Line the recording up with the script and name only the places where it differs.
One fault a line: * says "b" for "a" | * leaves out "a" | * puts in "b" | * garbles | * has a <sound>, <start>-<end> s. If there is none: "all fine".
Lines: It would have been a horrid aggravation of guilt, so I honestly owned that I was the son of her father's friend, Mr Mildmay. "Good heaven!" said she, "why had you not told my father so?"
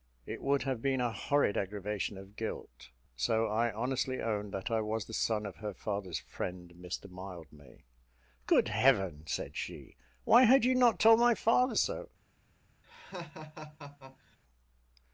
* has a laugh, 12.8-14.4 s